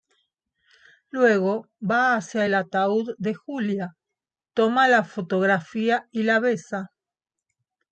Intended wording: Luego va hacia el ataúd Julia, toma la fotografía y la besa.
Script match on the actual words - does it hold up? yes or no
no